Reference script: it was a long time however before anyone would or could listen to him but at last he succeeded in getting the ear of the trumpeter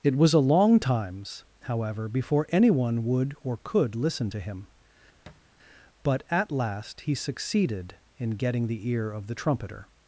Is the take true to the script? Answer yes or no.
no